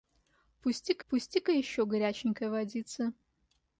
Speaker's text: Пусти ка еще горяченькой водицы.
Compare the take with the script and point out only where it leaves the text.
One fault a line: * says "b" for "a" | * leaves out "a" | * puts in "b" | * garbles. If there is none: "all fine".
* puts in "пусти ка"